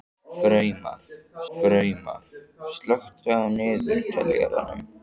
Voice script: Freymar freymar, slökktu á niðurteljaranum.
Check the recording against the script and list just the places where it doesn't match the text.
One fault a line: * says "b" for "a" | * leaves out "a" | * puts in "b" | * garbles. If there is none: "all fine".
all fine